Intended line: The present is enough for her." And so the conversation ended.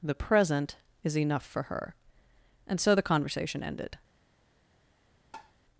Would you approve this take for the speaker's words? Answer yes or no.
yes